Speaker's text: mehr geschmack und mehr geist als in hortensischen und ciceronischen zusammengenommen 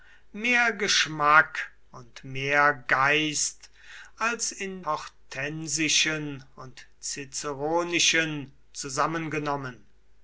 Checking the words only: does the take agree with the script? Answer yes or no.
yes